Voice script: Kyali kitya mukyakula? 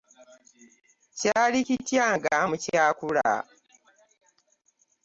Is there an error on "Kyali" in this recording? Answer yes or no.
no